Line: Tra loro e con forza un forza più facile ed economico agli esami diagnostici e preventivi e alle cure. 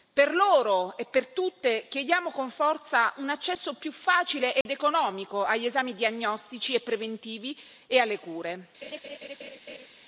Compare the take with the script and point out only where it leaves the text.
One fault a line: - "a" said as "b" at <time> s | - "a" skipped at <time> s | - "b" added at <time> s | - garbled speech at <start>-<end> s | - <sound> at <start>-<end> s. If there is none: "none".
- "Tra" said as "Per" at 0.1 s
- "per tutte chiediamo" added at 1.1 s
- "forza" said as "accesso" at 3.3 s
- dropout at 4.6-4.7 s
- laugh at 8.8-9.9 s